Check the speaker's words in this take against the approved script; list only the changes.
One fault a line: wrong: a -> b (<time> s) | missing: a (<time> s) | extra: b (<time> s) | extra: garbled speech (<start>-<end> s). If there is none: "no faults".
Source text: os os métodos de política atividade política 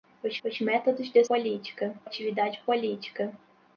no faults